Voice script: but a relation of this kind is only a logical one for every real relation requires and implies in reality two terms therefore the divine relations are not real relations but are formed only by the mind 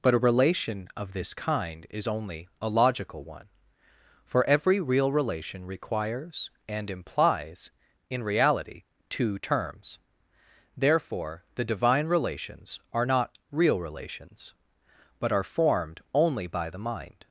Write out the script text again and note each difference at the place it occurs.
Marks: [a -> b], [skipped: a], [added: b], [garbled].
but a relation of this kind is only a logical one for every real relation requires and implies in reality two terms therefore the divine relations are not real relations but are formed only by the mind